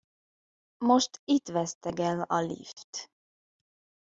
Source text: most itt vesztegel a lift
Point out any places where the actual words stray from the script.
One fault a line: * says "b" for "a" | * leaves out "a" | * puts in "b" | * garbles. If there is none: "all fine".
all fine